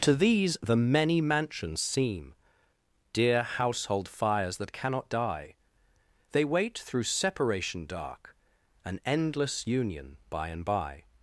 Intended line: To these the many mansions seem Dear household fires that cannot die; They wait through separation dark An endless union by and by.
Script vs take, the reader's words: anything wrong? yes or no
no